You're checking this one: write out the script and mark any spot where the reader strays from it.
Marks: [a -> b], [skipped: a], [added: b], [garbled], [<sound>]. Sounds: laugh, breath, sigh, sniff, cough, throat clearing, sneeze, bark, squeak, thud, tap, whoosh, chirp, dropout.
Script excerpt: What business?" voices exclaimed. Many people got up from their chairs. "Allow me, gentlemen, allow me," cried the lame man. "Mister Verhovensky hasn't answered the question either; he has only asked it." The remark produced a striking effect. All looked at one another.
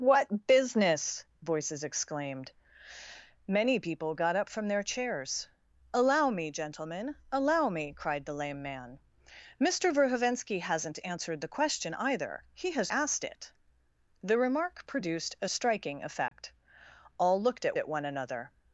What business?" voices exclaimed. Many people got up from their chairs. "Allow me, gentlemen, allow me," cried the lame man. "Mister Verhovensky hasn't answered the question either; he has [skipped: only] asked it." The remark produced a striking effect. [dropout] All looked at [added: at] one another.